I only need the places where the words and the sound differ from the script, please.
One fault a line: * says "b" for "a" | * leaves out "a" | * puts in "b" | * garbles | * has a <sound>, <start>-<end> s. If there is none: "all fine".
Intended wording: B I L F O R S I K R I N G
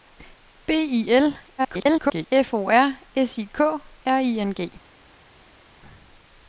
* garbles